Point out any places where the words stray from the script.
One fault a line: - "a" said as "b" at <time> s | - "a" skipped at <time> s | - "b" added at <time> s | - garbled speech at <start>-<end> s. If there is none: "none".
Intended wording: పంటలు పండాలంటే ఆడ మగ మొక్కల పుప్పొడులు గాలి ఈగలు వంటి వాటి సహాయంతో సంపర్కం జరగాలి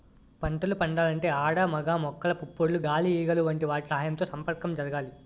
none